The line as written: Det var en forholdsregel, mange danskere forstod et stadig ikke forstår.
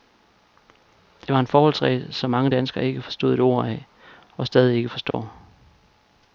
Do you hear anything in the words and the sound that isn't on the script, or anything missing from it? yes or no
yes